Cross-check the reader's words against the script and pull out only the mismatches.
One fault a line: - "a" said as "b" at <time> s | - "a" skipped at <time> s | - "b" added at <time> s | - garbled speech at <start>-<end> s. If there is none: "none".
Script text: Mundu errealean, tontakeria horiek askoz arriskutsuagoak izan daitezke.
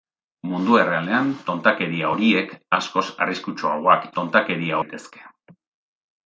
- "izan" said as "tontakeria" at 4.2 s